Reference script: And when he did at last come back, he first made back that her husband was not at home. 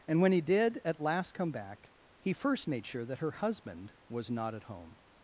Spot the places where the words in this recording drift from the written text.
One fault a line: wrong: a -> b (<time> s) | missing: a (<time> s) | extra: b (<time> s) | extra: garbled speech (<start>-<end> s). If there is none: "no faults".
wrong: back -> sure (2.9 s)